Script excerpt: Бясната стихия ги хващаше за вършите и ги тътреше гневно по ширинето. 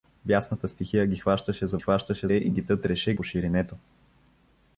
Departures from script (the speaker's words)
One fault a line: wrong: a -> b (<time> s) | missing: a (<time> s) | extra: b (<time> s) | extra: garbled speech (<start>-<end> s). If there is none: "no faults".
wrong: вършите -> хващаше (1.8 s)
missing: гневно (3.1 s)